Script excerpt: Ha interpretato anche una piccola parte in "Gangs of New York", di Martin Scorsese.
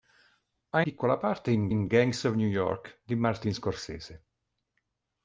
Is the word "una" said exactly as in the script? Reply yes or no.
no